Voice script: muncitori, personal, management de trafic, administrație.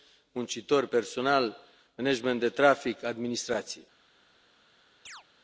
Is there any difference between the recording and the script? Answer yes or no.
no